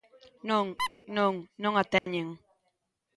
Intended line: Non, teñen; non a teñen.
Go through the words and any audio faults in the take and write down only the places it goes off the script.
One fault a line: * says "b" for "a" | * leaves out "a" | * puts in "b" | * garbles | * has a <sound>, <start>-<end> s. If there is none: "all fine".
* has a squeak, 0.8-0.9 s
* says "non" for "teñen"
* has a dropout, 2.0-2.1 s